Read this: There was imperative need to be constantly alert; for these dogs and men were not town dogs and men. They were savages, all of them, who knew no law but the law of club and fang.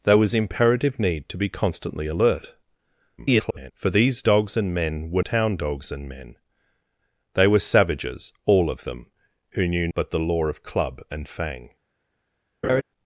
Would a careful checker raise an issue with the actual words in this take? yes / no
yes